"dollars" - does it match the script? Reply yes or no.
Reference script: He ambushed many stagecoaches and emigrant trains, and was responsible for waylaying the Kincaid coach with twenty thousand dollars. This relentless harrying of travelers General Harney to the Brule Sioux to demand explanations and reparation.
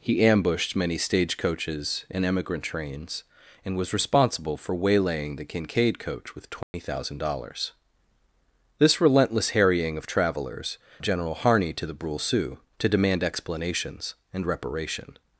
yes